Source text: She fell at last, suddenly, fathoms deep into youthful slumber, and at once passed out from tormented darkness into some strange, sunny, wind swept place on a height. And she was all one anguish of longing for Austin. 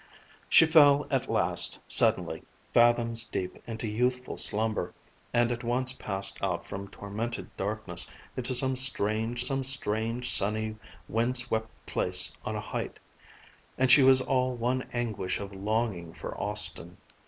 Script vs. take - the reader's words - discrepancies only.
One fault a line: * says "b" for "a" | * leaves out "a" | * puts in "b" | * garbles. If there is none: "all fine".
* puts in "some strange"